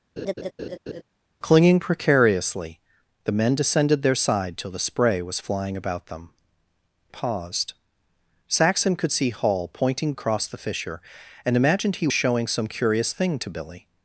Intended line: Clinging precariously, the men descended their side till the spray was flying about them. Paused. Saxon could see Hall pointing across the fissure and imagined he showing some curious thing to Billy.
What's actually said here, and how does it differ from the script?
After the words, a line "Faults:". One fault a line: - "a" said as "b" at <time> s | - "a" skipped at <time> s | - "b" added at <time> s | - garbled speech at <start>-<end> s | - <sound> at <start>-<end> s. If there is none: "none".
Clinging precariously, the men descended their side till the spray was flying about them. Paused. Saxon could see Hall pointing across the fissure and imagined he showing some curious thing to Billy.
Faults:
- laugh at 0.2-1.0 s